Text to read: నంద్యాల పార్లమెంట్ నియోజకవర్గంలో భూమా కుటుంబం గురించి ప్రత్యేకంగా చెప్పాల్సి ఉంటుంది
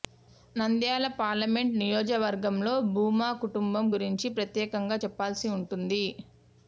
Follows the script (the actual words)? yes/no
yes